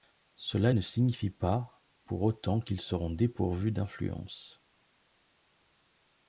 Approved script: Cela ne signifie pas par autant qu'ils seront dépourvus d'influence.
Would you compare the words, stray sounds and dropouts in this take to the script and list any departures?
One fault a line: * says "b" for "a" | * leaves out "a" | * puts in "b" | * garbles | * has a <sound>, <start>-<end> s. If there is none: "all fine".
* says "pour" for "par"